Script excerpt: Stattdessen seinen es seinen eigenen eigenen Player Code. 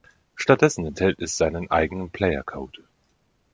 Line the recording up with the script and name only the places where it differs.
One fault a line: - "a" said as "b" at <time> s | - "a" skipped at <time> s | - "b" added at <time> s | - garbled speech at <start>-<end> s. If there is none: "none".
- "seinen" said as "enthält" at 0.8 s
- "eigenen" skipped at 2.1 s